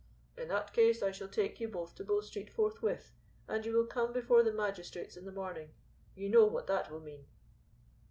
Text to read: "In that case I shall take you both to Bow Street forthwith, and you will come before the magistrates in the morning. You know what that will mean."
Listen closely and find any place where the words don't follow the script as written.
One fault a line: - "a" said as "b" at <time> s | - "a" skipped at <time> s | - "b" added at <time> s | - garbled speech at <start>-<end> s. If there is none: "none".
none